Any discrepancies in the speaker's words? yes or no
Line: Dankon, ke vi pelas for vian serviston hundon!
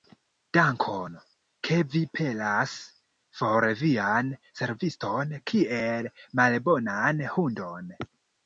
yes